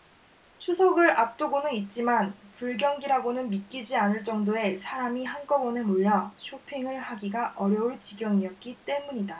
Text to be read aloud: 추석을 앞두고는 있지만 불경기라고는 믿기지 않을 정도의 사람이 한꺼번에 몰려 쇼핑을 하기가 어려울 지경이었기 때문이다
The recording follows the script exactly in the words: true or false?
true